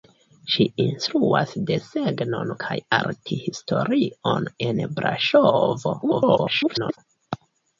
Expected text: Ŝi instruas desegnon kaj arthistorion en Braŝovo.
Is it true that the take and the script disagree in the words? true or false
true